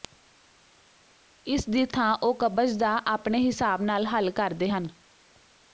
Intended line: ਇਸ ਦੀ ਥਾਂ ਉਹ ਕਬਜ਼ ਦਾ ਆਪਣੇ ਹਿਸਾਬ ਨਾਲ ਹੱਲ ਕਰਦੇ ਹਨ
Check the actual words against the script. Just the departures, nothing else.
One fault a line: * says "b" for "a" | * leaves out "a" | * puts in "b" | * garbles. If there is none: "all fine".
all fine